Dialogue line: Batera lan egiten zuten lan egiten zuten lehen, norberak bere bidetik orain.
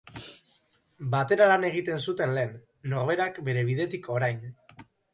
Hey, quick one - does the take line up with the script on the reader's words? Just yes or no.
no